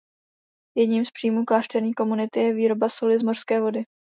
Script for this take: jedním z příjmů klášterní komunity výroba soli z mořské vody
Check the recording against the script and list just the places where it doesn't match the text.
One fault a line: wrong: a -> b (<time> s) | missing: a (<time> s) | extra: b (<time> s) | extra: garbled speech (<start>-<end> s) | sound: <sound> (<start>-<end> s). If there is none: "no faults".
extra: je (2.4 s)